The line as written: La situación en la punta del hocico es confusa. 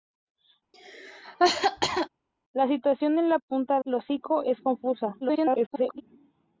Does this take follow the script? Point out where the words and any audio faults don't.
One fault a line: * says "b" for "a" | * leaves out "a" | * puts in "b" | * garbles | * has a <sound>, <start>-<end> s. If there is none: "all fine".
* has a cough, 0.7-2.1 s
* leaves out "del"
* garbles